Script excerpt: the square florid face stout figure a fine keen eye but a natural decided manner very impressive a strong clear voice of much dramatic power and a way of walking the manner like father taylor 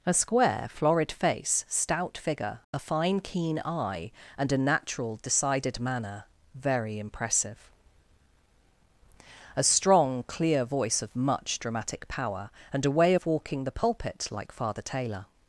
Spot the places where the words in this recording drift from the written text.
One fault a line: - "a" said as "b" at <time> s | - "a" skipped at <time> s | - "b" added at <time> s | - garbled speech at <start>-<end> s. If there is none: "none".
- "the" said as "a" at 0.0 s
- "but" said as "and" at 4.4 s
- "manner" said as "pulpit" at 13.7 s